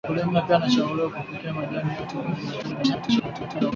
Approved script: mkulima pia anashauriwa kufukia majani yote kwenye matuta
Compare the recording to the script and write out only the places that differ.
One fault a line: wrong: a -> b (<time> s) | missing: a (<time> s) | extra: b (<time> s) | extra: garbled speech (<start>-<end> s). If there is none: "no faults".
extra: garbled speech (2.6-3.7 s)